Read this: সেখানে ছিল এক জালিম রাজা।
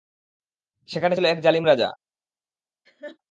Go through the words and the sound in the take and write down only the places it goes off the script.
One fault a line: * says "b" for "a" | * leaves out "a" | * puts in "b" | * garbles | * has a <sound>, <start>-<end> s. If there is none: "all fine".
* has a laugh, 2.9-3.2 s